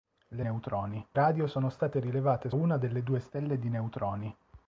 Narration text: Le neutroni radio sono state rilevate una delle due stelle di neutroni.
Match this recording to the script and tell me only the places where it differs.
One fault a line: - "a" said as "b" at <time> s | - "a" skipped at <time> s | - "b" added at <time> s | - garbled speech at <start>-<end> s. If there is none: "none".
none